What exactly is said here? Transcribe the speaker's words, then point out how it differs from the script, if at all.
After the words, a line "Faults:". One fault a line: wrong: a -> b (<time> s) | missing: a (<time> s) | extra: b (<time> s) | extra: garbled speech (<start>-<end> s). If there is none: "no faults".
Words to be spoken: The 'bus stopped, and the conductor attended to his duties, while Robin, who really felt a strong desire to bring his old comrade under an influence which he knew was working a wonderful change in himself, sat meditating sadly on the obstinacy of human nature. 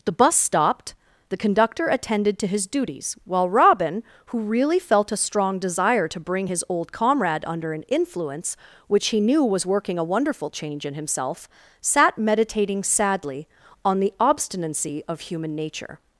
The 'bus stopped, the conductor attended to his duties, while Robin, who really felt a strong desire to bring his old comrade under an influence which he knew was working a wonderful change in himself, sat meditating sadly on the obstinacy of human nature.
Faults:
missing: and (0.9 s)